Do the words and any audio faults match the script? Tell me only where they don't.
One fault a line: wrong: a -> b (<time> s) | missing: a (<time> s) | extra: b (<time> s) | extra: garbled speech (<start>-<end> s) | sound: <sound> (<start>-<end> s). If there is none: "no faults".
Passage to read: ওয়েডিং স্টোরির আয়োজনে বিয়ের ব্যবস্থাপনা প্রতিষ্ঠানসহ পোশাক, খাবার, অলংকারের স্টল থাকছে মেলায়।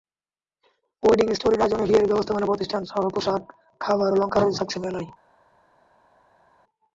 missing: স্টল (4.6 s)